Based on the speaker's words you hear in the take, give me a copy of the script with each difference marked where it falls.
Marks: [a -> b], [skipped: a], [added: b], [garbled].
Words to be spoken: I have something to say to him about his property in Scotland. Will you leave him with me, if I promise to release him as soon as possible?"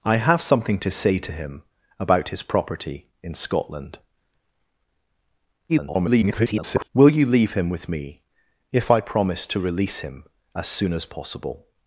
I have something to say to him about his property in Scotland. [garbled] Will you leave him with me, if I promise to release him as soon as possible?"